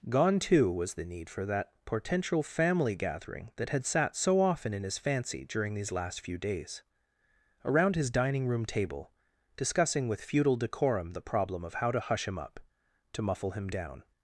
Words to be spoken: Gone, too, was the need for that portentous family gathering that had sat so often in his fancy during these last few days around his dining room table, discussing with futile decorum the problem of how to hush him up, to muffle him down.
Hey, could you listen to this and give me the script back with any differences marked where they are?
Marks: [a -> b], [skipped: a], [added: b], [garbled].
Gone, too, was the need for that [portentous -> potential] family gathering that had sat so often in his fancy during these last few days around his dining room table, discussing with futile decorum the problem of how to hush him up, to muffle him down.